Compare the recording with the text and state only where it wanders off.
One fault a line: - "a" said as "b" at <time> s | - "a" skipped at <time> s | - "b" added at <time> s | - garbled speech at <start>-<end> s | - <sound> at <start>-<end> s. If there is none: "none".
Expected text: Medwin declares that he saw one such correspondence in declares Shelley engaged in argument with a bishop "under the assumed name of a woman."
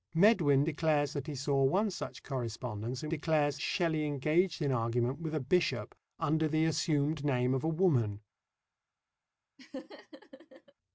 - laugh at 9.6-10.7 s